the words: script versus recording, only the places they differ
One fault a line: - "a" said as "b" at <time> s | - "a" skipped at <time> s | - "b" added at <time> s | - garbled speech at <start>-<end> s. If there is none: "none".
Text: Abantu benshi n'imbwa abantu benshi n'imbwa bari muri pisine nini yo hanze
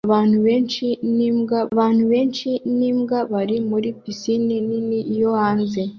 none